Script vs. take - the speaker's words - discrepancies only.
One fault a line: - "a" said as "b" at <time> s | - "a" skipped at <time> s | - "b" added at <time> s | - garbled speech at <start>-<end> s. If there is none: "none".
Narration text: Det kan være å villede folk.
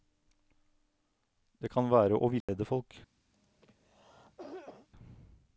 none